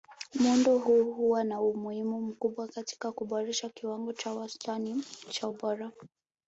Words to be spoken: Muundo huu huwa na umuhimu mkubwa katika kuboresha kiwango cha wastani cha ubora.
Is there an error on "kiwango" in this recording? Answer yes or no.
no